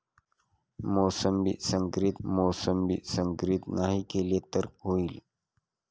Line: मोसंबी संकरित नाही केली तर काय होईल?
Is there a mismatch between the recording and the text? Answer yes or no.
yes